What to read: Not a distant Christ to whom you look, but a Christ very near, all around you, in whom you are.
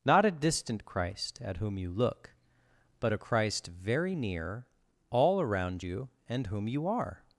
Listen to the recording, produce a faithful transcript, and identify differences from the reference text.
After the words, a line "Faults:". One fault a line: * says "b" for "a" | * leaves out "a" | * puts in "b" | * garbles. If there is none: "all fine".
Not a distant Christ at whom you look, but a Christ very near, all around you, and whom you are.
Faults:
* says "at" for "to"
* says "and" for "in"